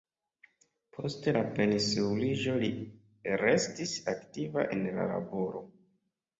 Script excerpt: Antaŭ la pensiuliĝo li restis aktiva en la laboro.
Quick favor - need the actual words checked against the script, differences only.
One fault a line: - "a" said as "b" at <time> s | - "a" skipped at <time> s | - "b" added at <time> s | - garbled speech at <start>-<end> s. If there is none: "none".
- "Antaŭ" said as "Post" at 1.0 s